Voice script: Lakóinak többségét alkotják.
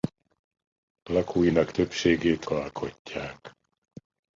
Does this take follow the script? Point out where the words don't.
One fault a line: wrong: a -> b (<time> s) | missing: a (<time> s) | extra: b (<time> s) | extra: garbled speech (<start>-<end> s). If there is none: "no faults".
no faults